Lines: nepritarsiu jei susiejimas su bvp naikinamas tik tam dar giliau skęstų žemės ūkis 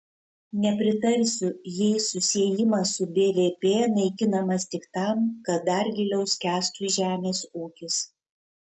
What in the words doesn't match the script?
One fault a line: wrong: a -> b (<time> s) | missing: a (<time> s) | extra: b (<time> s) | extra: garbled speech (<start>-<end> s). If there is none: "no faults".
extra: kad (5.4 s)